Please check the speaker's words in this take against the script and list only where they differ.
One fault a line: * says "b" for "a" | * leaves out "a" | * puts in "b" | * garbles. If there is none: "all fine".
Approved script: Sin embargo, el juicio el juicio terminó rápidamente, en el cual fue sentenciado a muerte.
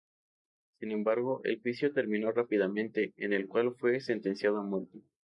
* leaves out "el juicio"